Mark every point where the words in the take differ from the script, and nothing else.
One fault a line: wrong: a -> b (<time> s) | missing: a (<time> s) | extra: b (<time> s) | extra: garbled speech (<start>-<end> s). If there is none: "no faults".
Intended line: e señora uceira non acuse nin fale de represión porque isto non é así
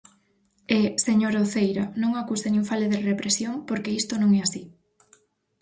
no faults